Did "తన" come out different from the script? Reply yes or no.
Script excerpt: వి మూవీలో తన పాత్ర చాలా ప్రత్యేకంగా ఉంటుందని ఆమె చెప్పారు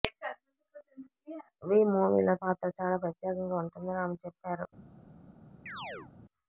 yes